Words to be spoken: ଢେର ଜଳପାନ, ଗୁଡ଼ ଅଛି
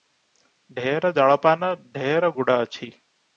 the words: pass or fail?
fail